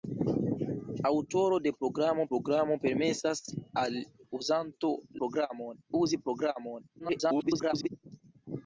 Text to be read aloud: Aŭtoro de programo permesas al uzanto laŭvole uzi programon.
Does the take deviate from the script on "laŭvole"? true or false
true